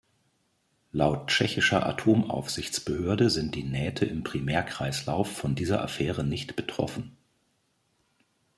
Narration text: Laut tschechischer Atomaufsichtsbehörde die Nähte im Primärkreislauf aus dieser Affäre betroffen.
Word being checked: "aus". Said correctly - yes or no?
no